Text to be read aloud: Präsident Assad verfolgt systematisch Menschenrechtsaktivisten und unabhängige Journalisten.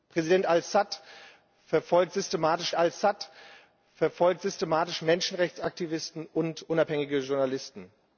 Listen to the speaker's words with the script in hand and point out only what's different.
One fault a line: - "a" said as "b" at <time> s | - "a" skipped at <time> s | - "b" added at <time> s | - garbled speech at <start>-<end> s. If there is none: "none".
- "Assad verfolgt systematisch" added at 2.8 s